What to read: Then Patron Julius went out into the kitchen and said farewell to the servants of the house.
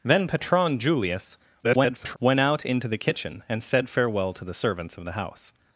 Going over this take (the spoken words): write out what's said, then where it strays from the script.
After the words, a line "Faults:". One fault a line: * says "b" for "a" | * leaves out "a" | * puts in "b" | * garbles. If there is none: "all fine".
Then Patron Julius [garbled] went out into the kitchen and said farewell to the servants of the house.
Faults:
* garbles